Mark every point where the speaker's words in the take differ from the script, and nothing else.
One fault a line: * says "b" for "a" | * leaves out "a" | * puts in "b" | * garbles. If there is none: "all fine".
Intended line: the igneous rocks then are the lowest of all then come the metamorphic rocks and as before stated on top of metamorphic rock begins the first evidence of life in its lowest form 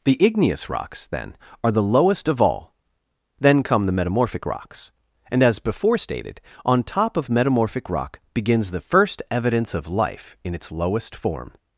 all fine